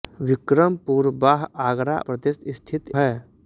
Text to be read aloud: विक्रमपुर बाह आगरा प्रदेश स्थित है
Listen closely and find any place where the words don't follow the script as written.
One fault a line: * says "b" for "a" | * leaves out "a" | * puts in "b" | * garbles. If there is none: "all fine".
all fine